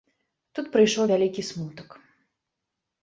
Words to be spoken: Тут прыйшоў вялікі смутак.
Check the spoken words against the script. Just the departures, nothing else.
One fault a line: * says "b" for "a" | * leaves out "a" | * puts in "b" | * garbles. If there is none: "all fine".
all fine